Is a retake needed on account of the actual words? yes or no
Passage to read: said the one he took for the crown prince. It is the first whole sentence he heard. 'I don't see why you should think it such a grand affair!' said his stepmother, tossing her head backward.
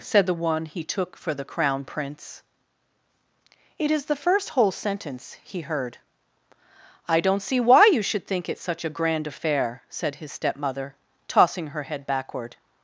no